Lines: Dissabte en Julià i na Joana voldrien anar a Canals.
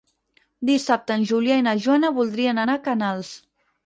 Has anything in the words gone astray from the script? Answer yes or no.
no